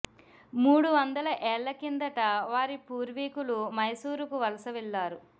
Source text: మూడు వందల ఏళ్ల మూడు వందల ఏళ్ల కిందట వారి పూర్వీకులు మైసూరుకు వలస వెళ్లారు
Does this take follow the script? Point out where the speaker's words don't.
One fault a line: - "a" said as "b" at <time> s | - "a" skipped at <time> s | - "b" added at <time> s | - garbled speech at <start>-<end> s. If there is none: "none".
- "మూడు వందల ఏళ్ల" skipped at 1.7 s